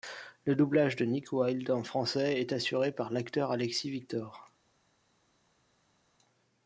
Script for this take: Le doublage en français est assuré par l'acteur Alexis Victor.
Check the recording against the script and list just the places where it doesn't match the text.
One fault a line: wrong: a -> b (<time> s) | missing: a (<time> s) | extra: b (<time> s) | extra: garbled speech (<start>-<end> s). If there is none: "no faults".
extra: de Nick Wilde (0.9 s)